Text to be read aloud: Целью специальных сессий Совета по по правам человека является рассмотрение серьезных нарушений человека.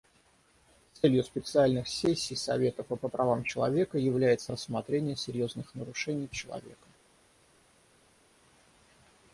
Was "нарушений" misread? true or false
false